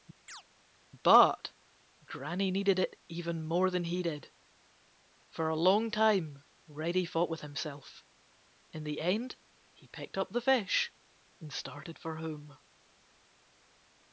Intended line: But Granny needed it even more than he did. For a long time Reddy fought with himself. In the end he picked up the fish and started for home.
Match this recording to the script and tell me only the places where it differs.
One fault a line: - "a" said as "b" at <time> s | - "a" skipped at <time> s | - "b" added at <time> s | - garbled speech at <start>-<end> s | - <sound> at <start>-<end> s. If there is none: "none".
- chirp at 0.3-0.4 s